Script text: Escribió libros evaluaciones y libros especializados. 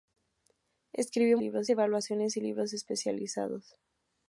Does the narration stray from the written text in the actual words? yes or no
no